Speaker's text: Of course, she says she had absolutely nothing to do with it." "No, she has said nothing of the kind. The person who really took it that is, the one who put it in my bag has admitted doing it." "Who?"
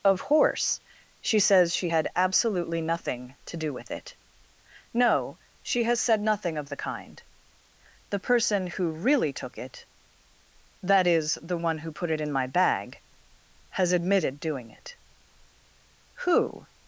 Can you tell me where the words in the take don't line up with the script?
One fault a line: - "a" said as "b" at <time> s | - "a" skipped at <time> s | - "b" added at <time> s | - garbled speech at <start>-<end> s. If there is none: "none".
- "course" said as "horse" at 0.2 s